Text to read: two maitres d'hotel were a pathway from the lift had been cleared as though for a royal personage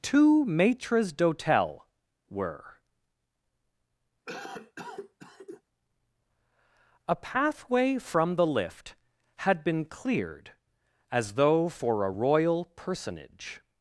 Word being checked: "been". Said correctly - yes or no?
yes